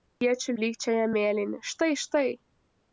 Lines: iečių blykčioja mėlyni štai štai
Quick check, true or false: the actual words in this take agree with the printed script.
true